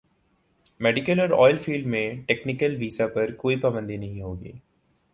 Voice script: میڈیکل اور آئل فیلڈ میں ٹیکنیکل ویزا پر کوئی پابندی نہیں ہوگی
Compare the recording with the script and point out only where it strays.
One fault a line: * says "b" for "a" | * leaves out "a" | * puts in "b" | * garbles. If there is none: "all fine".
all fine